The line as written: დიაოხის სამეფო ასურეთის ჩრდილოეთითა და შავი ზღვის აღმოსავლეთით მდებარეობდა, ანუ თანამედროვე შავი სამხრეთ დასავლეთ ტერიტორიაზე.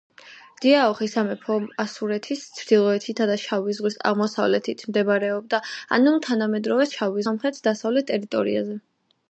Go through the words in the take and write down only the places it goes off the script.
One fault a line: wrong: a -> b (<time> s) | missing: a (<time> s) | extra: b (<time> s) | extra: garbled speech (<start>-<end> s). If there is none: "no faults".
no faults